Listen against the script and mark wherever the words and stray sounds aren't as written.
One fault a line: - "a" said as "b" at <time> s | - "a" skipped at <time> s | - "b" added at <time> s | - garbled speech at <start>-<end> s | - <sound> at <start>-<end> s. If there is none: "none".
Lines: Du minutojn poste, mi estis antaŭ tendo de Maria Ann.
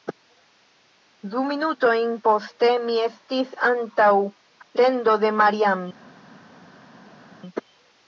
none